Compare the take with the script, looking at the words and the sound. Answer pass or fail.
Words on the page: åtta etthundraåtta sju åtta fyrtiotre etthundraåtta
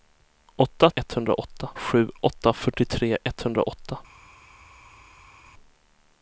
pass